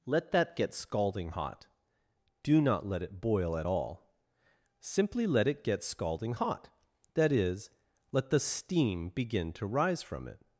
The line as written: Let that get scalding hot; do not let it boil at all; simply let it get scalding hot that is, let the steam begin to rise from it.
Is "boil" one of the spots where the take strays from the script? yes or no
no